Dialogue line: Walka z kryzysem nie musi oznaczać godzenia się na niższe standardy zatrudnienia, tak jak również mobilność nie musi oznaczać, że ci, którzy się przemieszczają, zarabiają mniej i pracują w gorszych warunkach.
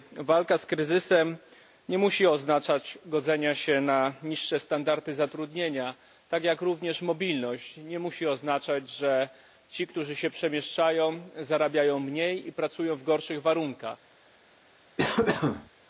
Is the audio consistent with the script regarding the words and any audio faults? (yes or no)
no